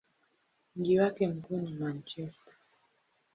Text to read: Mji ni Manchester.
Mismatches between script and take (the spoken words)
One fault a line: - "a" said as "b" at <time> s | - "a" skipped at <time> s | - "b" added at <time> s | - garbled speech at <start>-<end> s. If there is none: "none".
- "wake mkuu" added at 1.0 s